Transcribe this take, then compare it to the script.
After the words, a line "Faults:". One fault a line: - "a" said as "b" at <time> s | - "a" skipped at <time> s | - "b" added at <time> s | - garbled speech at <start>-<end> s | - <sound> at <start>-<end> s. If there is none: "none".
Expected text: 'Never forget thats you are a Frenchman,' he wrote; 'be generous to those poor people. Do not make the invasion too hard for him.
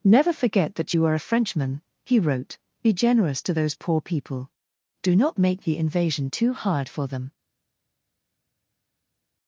'Never forget that you are a Frenchman,' he wrote; 'be generous to those poor people. Do not make the invasion too hard for them.
Faults:
- "thats" said as "that" at 0.8 s
- "him" said as "them" at 7.1 s